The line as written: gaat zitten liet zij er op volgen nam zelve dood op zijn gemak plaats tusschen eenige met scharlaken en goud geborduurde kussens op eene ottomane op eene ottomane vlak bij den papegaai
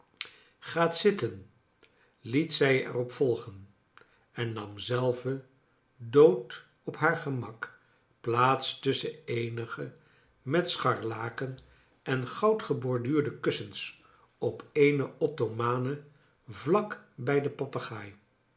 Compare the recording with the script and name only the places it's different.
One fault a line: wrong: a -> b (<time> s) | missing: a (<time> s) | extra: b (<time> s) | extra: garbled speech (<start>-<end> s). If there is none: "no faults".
extra: en (4.3 s)
wrong: zijn -> haar (7.0 s)
missing: op eene ottomane (16.0 s)